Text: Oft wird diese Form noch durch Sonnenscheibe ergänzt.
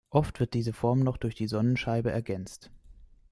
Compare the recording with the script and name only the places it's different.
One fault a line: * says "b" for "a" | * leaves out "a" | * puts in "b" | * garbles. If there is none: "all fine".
* puts in "die"